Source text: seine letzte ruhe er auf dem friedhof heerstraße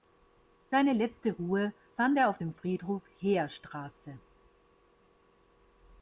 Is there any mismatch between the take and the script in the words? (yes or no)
yes